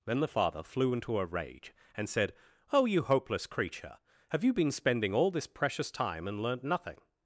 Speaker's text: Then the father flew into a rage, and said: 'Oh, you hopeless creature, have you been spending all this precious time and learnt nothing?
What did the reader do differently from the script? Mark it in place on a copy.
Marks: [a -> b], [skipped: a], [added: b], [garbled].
Then the father flew into a rage, and said: 'Oh, you hopeless creature, have you been spending all this precious time and learnt nothing?